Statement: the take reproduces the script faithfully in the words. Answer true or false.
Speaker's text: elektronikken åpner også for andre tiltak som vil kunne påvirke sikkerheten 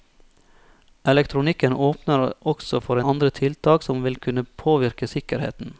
true